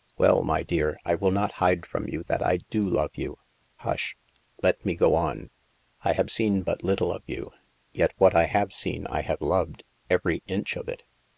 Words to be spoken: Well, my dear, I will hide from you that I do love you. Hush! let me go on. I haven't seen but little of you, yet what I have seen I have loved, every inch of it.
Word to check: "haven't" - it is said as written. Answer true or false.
false